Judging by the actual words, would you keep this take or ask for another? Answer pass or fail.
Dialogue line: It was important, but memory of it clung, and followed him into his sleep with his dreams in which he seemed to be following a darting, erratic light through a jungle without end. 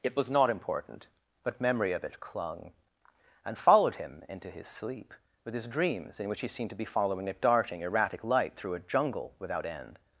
fail